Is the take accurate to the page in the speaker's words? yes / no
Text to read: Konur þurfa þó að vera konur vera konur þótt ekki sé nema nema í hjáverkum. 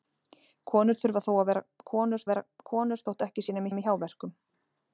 yes